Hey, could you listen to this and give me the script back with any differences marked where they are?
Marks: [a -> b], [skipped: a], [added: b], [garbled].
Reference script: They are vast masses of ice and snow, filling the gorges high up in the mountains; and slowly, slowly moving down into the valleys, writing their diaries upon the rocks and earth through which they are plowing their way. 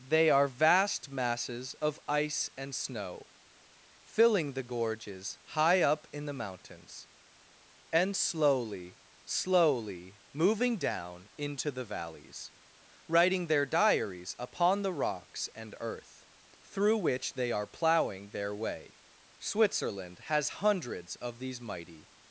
They are vast masses of ice and snow, filling the gorges high up in the mountains; and slowly, slowly moving down into the valleys, writing their diaries upon the rocks and earth through which they are plowing their way. [added: Switzerland has hundreds of these mighty]